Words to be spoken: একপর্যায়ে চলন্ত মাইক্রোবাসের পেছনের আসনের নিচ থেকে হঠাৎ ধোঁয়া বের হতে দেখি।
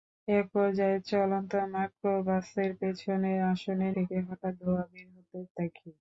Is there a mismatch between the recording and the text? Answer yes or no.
yes